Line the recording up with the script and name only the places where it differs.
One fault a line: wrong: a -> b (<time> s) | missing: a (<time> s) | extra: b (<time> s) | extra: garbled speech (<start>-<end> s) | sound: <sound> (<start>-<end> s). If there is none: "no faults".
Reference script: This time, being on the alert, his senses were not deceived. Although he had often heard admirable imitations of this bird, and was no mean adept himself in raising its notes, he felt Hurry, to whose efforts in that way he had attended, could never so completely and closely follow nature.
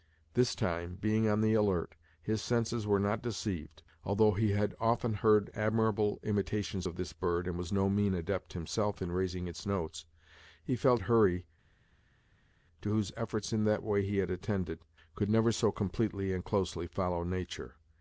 no faults